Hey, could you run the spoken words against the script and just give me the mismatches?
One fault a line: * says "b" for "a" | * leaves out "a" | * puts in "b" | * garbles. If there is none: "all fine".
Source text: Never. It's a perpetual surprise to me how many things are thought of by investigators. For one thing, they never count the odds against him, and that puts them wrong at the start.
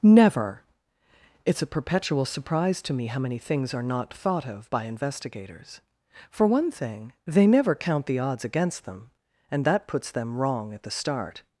* puts in "not"
* says "them" for "him"